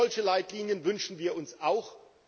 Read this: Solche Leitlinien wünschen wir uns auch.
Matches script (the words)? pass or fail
pass